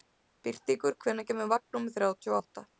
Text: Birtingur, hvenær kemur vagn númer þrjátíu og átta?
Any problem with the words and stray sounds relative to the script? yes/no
no